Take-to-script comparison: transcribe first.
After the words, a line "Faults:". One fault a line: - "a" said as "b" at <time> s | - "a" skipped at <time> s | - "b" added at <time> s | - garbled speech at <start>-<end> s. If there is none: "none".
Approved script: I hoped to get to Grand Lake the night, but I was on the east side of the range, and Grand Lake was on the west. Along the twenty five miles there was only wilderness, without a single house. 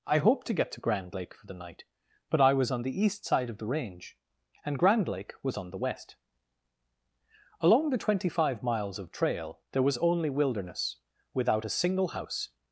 I hoped to get to Grand Lake for the night, but I was on the east side of the range, and Grand Lake was on the west. Along the twenty five miles of trail there was only wilderness, without a single house.
Faults:
- "for" added at 1.3 s
- "of trail" added at 9.0 s